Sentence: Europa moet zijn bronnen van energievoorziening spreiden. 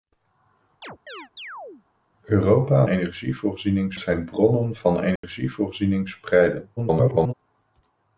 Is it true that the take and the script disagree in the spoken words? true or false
true